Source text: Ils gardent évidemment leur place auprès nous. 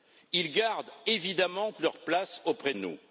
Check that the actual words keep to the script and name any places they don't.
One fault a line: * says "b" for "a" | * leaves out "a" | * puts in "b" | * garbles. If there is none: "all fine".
all fine